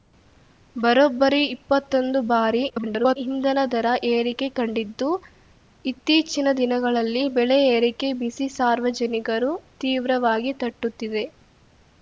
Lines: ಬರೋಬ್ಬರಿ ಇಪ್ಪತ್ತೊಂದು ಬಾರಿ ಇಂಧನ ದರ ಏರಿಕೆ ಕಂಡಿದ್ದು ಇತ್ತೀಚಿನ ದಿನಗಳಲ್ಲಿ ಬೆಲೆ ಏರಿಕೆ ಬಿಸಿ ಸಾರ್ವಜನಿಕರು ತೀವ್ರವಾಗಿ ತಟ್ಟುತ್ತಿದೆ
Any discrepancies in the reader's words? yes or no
yes